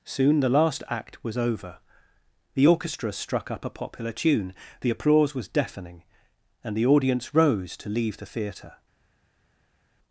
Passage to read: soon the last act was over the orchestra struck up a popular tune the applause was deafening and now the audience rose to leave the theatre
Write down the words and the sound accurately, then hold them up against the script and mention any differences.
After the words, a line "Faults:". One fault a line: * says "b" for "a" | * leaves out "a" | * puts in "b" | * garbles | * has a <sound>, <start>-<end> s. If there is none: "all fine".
soon the last act was over the orchestra struck up a popular tune the applause was deafening and the audience rose to leave the theatre
Faults:
* leaves out "now"